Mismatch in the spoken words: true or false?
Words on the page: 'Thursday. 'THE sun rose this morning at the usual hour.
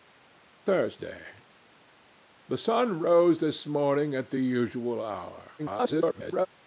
true